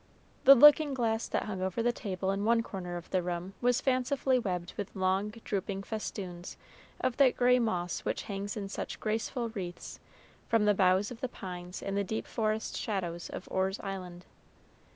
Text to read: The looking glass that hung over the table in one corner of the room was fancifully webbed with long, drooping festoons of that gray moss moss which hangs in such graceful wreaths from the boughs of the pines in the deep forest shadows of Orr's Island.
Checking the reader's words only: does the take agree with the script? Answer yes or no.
no